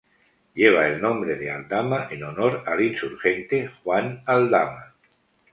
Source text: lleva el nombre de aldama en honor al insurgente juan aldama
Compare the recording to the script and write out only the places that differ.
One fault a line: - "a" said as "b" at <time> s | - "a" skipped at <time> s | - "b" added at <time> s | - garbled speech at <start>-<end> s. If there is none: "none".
none